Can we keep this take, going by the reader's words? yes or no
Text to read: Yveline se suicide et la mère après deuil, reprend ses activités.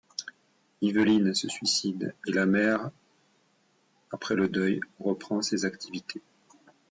no